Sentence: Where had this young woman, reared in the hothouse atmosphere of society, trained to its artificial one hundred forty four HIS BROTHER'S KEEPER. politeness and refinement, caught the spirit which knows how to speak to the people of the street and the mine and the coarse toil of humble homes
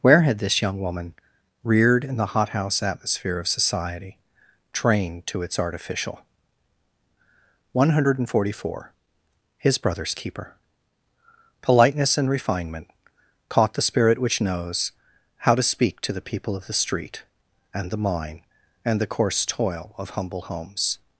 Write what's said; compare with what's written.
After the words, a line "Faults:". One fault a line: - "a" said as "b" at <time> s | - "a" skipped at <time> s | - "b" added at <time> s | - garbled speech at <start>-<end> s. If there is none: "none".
Where had this young woman, reared in the hothouse atmosphere of society, trained to its artificial one hundred forty four HIS BROTHER'S KEEPER. politeness and refinement, caught the spirit which knows how to speak to the people of the street and the mine and the coarse toil of humble homes
Faults:
none